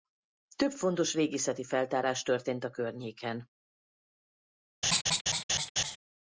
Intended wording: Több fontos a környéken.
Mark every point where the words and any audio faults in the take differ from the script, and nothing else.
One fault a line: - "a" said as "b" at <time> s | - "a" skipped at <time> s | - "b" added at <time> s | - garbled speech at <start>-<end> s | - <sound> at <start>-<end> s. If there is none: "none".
- "régészeti feltárás történt" added at 1.1 s
- laugh at 4.8-6.0 s